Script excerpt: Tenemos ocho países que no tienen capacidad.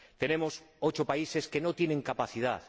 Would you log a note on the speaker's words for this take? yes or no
no